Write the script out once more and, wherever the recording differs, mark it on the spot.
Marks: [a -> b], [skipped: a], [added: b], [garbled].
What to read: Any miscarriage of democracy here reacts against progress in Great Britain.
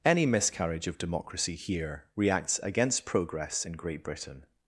Any miscarriage of democracy here reacts against progress in Great Britain.